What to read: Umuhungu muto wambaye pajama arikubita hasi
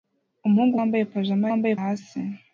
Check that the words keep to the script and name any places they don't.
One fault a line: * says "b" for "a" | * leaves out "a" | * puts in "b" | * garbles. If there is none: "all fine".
* leaves out "muto"
* says "wambaye" for "arikubita"